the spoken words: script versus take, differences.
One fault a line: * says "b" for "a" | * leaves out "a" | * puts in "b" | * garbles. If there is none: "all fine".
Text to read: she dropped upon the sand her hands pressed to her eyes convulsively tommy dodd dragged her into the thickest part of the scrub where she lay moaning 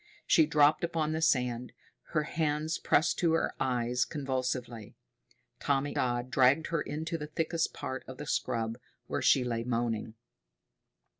all fine